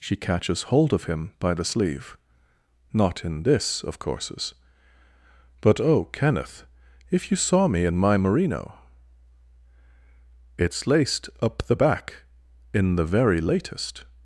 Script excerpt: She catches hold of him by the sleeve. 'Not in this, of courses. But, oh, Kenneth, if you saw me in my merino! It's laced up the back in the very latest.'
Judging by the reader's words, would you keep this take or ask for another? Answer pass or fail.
pass